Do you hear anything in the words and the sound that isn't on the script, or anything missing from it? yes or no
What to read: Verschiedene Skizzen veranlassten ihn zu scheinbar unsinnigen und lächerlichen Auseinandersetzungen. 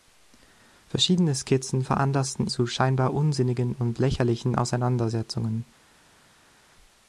yes